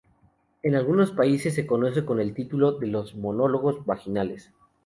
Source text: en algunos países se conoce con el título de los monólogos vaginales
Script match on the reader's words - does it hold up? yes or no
yes